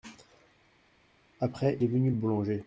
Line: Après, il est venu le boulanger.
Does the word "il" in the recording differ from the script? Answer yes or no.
yes